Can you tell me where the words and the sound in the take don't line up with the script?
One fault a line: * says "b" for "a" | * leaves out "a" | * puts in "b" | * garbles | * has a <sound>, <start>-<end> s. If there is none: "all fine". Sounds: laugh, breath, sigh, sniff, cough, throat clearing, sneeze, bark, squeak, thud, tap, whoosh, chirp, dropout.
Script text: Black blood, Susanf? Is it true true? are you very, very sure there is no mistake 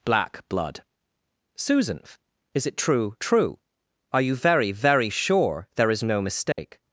* has a dropout, 6.5-6.6 s